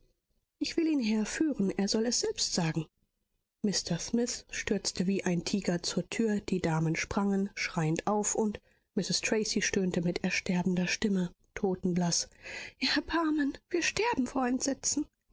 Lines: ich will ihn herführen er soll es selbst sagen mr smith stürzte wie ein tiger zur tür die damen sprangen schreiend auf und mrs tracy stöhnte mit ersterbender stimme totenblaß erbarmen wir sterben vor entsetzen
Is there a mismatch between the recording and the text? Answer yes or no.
no